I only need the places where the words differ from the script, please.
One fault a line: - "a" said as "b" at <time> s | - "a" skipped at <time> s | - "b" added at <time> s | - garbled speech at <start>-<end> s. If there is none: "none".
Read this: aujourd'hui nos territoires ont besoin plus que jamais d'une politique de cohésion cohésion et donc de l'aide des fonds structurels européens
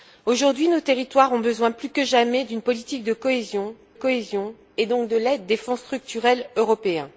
none